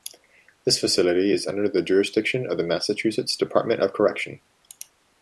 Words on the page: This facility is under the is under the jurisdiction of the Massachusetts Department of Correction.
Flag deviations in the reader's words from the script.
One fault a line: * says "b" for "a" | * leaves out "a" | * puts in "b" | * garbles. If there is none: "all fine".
* leaves out "is under the"